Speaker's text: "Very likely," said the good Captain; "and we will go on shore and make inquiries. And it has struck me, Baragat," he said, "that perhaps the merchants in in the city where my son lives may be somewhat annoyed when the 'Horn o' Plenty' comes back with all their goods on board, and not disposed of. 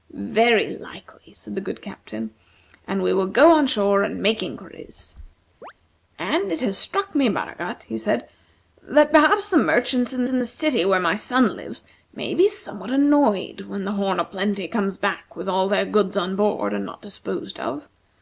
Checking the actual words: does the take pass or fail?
pass